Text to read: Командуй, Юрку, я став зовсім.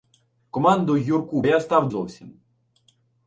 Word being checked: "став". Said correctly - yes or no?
yes